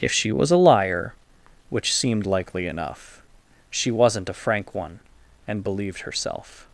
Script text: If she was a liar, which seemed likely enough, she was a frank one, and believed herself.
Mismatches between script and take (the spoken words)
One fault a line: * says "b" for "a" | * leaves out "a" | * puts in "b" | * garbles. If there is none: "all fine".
* says "wasn't" for "was"